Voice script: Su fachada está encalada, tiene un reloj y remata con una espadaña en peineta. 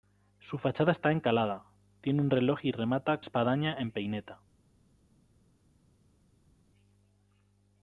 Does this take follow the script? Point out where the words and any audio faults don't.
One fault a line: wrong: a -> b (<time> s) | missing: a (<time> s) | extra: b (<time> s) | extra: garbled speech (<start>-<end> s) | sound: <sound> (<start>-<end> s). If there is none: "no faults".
missing: con una (3.2 s)